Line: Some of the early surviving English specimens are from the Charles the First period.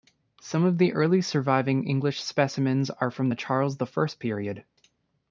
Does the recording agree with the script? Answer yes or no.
yes